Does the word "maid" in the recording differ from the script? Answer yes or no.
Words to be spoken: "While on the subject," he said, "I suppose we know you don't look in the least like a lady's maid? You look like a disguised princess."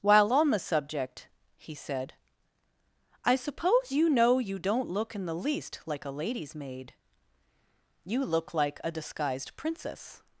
no